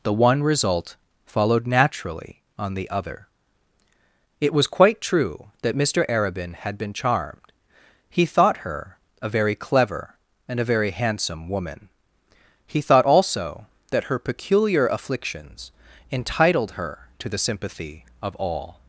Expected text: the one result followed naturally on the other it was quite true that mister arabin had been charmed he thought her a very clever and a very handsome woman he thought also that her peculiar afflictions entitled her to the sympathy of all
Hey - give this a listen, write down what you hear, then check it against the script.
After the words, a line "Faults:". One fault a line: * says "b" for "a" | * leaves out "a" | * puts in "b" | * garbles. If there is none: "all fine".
the one result followed naturally on the other it was quite true that mister arabin had been charmed he thought her a very clever and a very handsome woman he thought also that her peculiar afflictions entitled her to the sympathy of all
Faults:
all fine